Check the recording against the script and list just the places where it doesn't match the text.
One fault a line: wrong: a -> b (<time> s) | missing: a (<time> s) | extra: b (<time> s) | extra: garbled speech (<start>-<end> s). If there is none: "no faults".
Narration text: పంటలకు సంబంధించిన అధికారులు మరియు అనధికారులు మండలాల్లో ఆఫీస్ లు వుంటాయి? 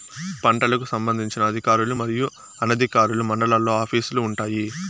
no faults